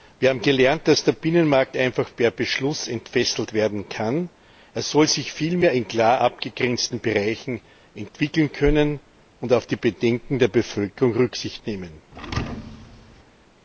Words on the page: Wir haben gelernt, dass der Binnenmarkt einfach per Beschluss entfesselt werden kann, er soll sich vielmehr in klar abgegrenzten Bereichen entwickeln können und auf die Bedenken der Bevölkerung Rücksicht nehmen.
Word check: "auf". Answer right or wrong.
right